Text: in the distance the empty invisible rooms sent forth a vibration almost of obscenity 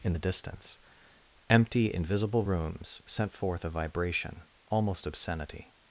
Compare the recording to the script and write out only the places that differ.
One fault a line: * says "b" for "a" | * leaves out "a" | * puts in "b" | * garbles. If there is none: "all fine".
* leaves out "the"
* leaves out "of"